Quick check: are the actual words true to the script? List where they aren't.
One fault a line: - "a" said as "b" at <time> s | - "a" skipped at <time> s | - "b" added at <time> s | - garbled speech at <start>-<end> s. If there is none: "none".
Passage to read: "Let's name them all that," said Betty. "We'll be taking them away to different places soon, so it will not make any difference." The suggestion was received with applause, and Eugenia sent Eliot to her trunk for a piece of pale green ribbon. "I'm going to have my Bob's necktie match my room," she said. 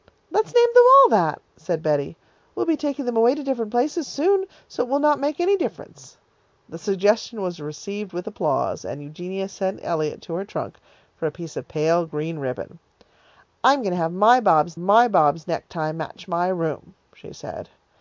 - "my Bob's" added at 14.8 s